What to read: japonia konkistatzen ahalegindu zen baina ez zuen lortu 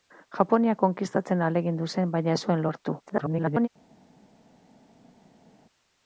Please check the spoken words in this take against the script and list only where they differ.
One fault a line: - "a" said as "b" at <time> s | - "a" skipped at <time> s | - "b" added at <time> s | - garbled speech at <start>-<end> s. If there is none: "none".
- garbled speech at 3.1-3.7 s